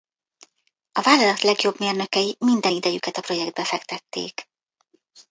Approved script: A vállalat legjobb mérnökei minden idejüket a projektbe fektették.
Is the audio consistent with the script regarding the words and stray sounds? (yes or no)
yes